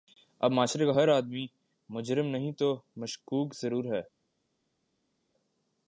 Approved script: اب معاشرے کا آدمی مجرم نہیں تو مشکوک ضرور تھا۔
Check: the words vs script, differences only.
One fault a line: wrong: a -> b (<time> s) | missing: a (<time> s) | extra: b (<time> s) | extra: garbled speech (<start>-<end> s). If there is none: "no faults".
extra: ہر (0.9 s)
wrong: تھا -> ہے (3.9 s)